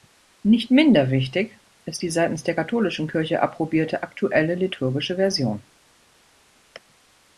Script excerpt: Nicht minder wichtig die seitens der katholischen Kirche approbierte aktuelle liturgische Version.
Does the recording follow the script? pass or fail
fail